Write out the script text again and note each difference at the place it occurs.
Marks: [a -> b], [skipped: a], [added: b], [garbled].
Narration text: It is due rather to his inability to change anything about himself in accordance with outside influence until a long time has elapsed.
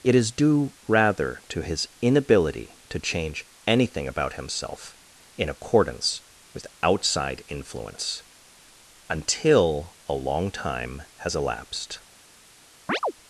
It is due rather to his inability to change anything about himself in accordance with outside influence until a long time has elapsed.